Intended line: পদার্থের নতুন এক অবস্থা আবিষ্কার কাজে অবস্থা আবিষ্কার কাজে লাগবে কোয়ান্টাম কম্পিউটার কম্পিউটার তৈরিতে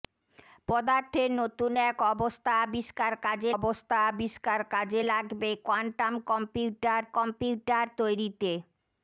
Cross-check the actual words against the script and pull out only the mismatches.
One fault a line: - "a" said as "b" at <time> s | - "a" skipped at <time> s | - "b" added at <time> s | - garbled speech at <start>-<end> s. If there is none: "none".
none